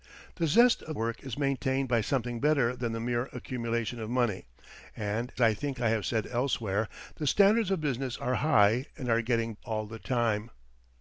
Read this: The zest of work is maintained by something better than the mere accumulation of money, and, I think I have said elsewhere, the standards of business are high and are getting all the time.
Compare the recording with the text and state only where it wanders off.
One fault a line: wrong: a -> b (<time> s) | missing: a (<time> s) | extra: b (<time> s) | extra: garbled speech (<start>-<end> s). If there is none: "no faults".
no faults